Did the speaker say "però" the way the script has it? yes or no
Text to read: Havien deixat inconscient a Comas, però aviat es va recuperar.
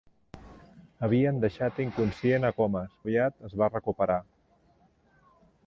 no